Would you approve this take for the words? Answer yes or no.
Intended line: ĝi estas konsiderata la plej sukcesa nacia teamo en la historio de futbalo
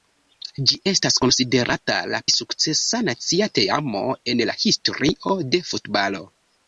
no